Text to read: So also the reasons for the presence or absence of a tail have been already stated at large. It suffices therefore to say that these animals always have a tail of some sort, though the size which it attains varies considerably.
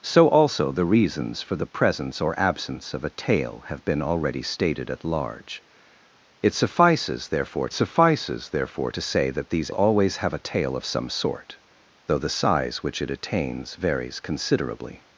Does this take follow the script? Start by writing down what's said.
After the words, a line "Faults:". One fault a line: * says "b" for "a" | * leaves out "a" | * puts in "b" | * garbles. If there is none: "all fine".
So also the reasons for the presence or absence of a tail have been already stated at large. It suffices therefore suffices therefore to say that these always have a tail of some sort, though the size which it attains varies considerably.
Faults:
* puts in "suffices therefore"
* leaves out "animals"